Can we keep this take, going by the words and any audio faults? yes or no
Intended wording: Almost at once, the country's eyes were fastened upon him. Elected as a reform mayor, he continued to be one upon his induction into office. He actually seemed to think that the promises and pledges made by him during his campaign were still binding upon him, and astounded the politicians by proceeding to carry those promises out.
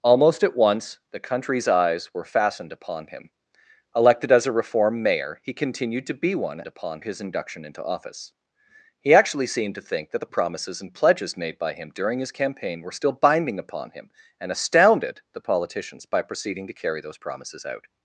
yes